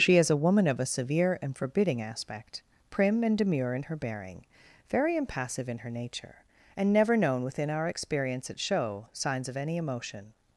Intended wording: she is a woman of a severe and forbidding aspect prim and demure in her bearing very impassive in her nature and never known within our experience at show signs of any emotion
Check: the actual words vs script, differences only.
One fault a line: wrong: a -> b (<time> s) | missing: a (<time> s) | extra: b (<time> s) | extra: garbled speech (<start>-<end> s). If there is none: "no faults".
no faults